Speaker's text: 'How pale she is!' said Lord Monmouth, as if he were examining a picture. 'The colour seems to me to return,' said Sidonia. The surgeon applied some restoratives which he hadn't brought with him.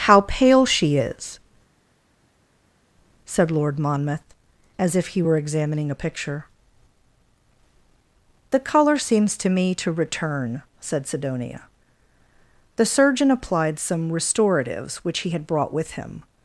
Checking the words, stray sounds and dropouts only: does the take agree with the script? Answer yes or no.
no